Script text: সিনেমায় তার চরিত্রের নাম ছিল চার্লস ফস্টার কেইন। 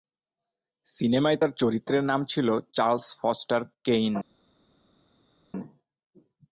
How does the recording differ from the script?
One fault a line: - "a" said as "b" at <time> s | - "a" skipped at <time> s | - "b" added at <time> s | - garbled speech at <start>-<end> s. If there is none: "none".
none